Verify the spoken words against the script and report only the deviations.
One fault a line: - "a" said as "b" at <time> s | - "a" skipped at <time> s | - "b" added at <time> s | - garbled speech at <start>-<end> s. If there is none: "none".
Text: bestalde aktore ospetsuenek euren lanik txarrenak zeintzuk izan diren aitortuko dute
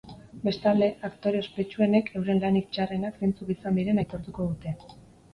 none